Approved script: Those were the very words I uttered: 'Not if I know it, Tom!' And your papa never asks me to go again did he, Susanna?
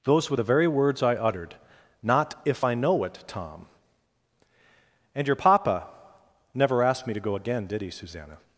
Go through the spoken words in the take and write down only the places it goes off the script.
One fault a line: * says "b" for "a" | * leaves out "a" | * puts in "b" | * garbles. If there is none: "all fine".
* says "asked" for "asks"